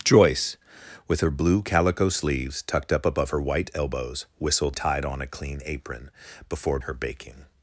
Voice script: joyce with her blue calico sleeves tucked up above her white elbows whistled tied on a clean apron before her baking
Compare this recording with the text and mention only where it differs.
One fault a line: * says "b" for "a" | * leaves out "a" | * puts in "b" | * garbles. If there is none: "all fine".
all fine